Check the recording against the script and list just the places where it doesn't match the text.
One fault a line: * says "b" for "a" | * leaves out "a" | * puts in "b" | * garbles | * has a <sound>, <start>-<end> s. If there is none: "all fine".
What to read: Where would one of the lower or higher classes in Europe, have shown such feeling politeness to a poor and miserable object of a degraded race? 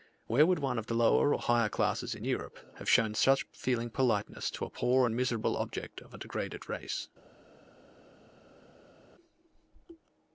all fine